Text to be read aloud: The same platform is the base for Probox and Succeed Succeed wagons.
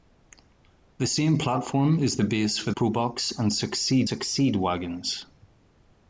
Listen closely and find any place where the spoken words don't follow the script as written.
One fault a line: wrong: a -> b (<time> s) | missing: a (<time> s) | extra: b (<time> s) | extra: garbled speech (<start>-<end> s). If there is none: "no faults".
no faults